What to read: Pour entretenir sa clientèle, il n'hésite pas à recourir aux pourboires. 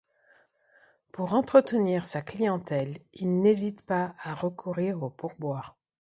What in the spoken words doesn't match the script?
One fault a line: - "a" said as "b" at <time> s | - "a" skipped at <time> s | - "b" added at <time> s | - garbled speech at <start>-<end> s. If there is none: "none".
none